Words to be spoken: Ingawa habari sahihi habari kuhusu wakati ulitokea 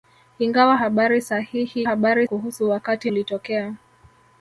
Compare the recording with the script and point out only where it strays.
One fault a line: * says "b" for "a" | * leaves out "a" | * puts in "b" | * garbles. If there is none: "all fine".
all fine